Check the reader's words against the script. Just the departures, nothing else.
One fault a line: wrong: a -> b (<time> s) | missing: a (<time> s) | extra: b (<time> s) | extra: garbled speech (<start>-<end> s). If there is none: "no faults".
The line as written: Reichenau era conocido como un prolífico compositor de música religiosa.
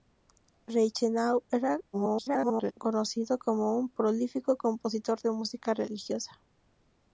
extra: garbled speech (1.9-2.7 s)